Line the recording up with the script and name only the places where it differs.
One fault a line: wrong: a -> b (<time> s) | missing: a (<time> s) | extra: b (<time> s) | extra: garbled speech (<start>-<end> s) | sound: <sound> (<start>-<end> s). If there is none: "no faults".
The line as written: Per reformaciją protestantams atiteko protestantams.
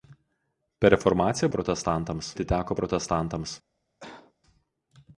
sound: cough (4.0-4.3 s)